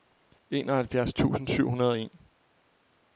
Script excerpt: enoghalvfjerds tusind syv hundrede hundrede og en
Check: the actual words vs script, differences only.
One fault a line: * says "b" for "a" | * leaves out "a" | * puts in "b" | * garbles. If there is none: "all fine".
* leaves out "hundrede"